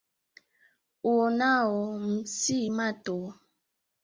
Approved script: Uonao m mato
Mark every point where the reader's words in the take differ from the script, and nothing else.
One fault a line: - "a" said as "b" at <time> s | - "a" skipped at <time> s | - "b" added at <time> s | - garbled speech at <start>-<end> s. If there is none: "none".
- "si" added at 2.4 s